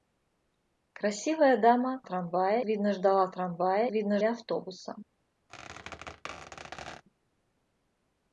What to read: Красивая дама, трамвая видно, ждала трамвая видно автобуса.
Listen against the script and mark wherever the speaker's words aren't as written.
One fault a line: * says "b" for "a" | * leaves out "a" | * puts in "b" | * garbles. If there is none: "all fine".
all fine